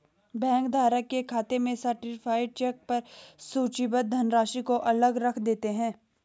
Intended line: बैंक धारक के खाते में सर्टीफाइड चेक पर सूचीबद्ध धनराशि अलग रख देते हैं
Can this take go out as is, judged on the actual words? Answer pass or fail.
fail